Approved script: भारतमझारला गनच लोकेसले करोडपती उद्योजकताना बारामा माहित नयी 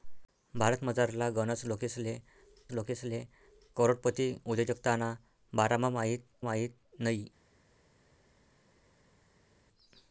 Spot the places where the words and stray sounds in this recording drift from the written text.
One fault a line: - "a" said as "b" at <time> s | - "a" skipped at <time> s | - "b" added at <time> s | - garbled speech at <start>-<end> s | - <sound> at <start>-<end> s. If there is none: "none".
- "लोकेसले" added at 2.7 s
- "माहित" added at 6.4 s